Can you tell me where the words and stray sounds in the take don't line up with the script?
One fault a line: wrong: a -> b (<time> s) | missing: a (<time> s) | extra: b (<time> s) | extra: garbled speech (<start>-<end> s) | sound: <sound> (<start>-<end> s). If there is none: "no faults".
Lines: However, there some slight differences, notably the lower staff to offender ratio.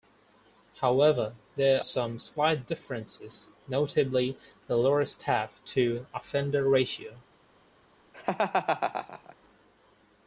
sound: laugh (8.1-9.4 s)